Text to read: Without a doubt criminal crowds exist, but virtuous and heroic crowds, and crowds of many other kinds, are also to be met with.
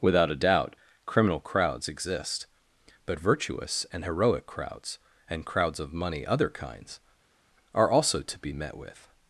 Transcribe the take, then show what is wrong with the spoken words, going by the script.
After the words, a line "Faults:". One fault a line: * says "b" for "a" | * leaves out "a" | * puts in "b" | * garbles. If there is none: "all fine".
Without a doubt criminal crowds exist, but virtuous and heroic crowds, and crowds of money other kinds, are also to be met with.
Faults:
* says "money" for "many"